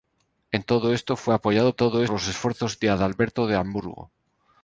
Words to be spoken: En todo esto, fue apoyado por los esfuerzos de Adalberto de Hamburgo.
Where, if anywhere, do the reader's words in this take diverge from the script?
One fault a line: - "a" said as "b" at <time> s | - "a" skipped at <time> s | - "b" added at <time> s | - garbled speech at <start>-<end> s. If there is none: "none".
- "por" said as "todo" at 1.7 s